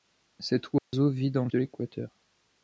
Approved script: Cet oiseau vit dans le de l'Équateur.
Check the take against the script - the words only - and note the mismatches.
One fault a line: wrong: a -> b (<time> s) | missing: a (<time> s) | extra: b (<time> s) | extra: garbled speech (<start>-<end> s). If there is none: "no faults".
no faults